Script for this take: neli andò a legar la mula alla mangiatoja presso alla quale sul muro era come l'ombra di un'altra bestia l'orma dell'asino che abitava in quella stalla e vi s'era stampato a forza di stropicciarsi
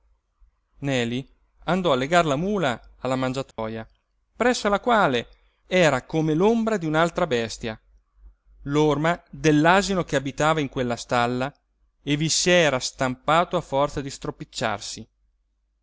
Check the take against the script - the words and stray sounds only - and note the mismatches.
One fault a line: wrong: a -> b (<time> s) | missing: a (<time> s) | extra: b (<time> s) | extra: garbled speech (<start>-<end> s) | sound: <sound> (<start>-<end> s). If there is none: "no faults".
sound: dropout (3.5-3.6 s)
missing: sul muro (5.3 s)